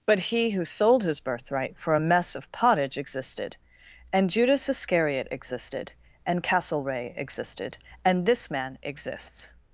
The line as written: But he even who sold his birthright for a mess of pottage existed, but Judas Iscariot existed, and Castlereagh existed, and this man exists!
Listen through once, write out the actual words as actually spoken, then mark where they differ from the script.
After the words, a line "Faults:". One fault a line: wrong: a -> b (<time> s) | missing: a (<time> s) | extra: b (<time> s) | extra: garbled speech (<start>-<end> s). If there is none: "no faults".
But he who sold his birthright for a mess of pottage existed, and Judas Iscariot existed, and Castlereagh existed, and this man exists!
Faults:
missing: even (0.5 s)
wrong: but -> and (4.1 s)